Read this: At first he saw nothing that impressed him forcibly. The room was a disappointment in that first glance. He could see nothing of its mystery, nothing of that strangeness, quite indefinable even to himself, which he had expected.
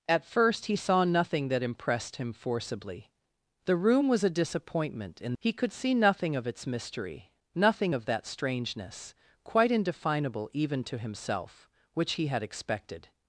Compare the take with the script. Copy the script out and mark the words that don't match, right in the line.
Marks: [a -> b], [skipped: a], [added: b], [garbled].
At first he saw nothing that impressed him forcibly. The room was a disappointment in [skipped: that first glance.] He could see nothing of its mystery, nothing of that strangeness, quite indefinable even to himself, which he had expected.